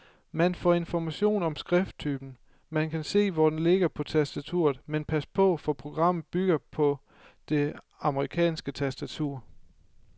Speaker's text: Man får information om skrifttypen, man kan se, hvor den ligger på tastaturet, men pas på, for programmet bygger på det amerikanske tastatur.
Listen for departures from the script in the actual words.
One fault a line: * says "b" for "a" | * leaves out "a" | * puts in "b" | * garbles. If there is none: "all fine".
all fine